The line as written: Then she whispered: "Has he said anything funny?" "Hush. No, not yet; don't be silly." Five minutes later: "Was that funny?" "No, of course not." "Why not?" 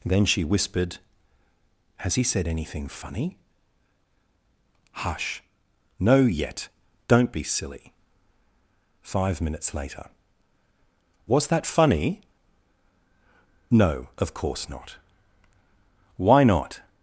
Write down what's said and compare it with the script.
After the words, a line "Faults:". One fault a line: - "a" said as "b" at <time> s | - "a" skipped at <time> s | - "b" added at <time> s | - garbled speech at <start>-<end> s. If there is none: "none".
Then she whispered: "Has he said anything funny?" "Hush. No, yet; don't be silly." Five minutes later: "Was that funny?" "No, of course not." "Why not?"
Faults:
- "not" skipped at 6.2 s